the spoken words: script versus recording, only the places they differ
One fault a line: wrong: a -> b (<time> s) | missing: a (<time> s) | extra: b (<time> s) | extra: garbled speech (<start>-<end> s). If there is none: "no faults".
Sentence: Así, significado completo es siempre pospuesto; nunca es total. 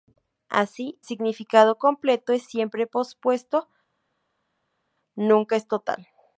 no faults